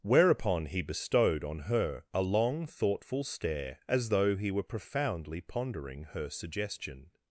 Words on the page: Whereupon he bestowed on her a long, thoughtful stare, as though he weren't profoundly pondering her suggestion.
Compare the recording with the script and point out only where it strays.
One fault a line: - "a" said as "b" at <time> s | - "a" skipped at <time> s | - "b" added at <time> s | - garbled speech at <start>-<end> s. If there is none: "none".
- "weren't" said as "were" at 4.5 s